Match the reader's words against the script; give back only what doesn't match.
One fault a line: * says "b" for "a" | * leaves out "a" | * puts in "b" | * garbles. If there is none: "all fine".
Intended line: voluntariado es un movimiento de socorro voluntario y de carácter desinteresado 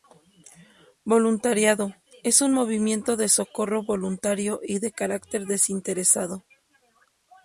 all fine